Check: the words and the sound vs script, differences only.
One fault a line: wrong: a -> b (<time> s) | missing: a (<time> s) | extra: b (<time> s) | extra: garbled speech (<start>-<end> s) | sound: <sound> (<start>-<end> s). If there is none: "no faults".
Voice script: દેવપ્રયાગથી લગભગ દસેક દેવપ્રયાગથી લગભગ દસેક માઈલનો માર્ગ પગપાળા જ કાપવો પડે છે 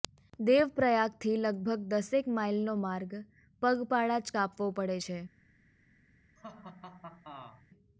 missing: દેવપ્રયાગથી લગભગ દસેક (2.3 s)
sound: laugh (6.4-7.7 s)